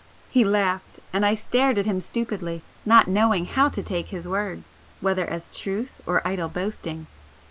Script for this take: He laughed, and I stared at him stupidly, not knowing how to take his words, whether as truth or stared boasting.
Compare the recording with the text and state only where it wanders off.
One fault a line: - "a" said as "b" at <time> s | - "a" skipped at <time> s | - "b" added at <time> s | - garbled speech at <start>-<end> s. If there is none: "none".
- "stared" said as "idle" at 6.2 s